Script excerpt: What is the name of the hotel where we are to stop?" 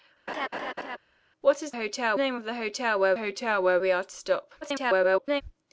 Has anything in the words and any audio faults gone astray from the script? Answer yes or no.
yes